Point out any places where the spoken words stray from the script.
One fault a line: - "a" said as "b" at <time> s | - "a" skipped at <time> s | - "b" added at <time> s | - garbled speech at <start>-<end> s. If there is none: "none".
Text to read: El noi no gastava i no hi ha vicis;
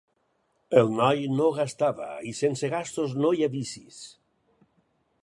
- "sense gastos" added at 2.4 s